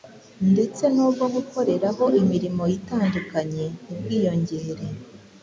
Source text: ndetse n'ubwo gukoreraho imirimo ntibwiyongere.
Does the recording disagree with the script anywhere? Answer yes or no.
yes